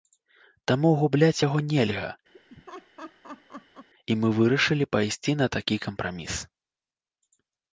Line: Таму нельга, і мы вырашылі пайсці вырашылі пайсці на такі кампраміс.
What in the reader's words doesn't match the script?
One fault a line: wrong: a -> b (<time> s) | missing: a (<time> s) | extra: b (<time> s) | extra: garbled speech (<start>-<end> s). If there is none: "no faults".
extra: губляць яго (1.0 s)
missing: вырашылі пайсці (5.3 s)